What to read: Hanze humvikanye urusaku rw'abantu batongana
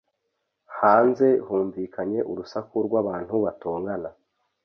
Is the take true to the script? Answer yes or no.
yes